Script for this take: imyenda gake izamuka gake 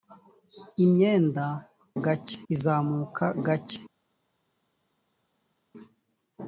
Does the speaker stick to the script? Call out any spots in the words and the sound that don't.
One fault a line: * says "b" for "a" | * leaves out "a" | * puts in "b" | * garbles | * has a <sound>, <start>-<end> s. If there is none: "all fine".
all fine